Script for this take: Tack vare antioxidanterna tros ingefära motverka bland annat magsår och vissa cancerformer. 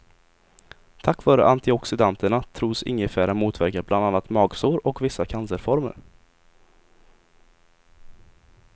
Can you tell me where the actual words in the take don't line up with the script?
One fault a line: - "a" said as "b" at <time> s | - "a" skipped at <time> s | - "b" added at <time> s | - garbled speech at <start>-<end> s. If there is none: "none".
none